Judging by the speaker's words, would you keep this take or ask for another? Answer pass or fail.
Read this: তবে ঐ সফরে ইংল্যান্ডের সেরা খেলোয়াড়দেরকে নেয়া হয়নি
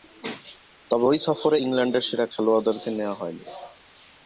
pass